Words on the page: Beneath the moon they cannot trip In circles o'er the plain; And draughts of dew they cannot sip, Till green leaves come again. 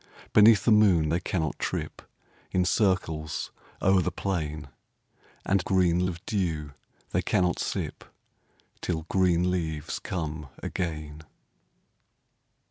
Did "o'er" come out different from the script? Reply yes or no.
no